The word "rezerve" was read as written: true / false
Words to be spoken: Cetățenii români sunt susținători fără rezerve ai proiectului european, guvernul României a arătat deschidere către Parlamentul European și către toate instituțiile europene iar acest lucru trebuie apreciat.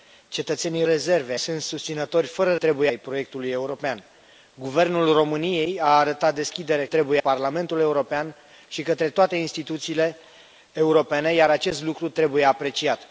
false